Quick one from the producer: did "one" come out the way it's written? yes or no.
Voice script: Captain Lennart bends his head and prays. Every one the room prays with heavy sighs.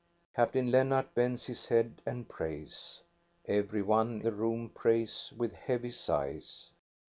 yes